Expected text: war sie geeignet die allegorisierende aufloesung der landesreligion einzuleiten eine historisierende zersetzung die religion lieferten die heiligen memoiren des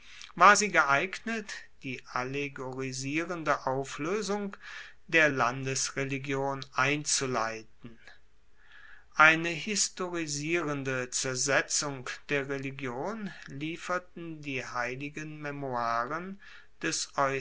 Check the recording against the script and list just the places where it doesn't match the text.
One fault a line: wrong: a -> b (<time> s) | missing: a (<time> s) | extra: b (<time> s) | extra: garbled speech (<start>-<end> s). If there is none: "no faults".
wrong: die -> der (12.3 s)